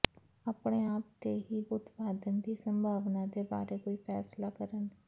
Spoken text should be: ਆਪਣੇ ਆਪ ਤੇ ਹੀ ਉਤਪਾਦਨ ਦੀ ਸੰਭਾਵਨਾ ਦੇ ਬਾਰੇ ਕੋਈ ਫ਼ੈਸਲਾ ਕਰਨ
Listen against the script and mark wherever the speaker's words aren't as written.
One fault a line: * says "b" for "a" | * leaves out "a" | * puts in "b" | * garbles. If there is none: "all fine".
all fine